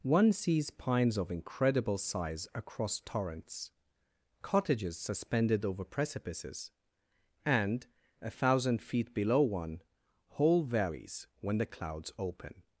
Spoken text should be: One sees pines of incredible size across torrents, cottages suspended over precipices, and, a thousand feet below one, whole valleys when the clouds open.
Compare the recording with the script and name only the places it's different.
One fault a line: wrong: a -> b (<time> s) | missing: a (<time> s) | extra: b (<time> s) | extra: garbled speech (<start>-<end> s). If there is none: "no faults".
no faults